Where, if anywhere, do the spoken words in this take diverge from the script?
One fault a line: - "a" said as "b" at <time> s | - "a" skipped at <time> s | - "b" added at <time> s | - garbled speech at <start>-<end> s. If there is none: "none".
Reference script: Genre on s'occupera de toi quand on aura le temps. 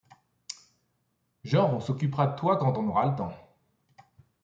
none